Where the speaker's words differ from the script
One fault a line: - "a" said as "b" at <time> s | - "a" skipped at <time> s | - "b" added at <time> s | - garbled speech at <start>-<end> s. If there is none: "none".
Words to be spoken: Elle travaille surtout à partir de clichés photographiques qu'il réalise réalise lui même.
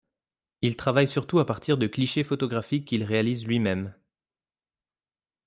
- "Elle" said as "Il" at 0.6 s
- "réalise" skipped at 3.5 s